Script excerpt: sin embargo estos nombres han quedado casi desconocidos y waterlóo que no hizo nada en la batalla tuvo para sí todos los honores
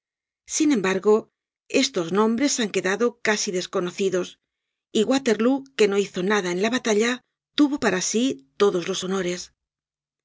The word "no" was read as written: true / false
true